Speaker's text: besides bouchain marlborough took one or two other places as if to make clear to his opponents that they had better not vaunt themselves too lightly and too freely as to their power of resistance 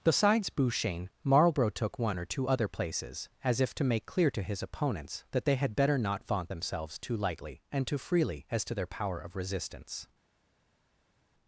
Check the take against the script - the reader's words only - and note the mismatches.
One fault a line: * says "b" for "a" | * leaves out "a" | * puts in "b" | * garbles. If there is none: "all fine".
all fine